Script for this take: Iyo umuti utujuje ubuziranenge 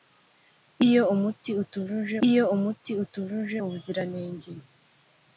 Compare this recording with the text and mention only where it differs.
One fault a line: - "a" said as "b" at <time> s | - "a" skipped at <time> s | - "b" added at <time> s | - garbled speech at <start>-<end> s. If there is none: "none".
- "iyo umuti utujuje" added at 2.3 s